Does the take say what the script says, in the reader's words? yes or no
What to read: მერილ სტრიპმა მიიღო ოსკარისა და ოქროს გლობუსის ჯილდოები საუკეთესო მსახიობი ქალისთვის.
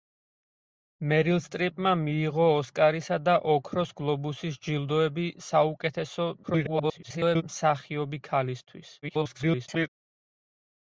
no